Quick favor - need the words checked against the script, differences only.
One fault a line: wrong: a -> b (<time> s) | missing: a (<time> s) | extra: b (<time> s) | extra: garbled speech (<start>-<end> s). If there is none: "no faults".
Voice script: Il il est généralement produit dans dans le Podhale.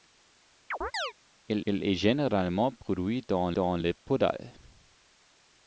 no faults